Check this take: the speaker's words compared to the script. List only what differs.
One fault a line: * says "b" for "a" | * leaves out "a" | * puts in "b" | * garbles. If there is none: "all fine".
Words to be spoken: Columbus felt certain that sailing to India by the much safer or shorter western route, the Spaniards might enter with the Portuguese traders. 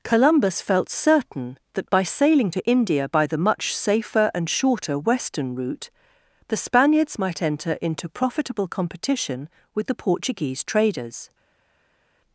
* puts in "by"
* says "and" for "or"
* puts in "into profitable competition"